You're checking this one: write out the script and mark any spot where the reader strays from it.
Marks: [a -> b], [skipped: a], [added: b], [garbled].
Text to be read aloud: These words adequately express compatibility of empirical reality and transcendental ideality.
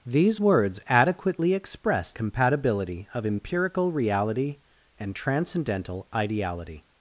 These words adequately express compatibility of empirical reality and transcendental ideality.